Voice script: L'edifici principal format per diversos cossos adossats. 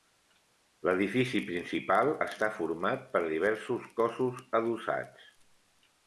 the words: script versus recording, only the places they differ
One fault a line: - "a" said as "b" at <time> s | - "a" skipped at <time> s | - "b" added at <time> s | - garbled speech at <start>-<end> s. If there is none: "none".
- "està" added at 2.3 s